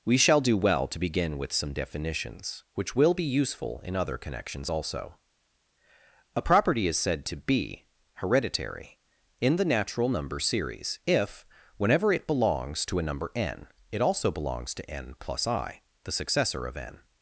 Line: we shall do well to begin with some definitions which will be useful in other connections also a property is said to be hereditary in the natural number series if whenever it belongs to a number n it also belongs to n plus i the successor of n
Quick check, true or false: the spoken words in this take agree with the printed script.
true